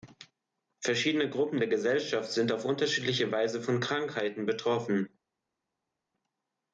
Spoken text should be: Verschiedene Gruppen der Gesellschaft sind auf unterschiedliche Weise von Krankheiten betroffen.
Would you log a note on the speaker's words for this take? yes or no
no